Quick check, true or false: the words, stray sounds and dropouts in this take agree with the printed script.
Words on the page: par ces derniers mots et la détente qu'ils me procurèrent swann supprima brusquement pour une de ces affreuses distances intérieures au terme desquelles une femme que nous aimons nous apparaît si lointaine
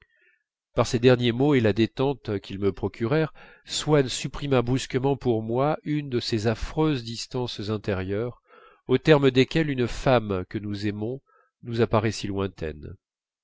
false